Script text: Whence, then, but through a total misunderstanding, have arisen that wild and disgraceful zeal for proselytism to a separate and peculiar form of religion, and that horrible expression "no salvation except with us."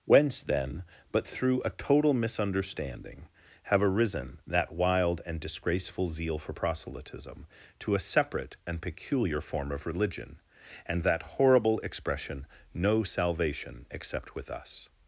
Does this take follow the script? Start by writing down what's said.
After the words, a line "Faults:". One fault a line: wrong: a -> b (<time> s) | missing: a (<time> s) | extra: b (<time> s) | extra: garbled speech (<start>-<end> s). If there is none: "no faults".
Whence, then, but through a total misunderstanding, have arisen that wild and disgraceful zeal for proselytism to a separate and peculiar form of religion, and that horrible expression "no salvation except with us."
Faults:
no faults